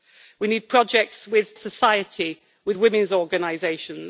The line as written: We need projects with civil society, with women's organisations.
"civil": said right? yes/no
no